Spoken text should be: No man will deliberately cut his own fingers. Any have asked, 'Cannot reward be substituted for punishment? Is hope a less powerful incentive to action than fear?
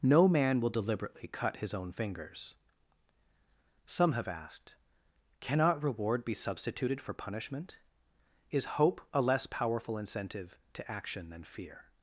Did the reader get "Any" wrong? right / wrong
wrong